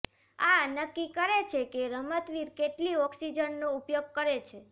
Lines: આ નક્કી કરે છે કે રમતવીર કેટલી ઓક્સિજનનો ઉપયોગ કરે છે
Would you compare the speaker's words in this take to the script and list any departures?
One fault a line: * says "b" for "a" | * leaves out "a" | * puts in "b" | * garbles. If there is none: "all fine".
all fine